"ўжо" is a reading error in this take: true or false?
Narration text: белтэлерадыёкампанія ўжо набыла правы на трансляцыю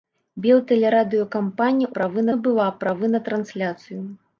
true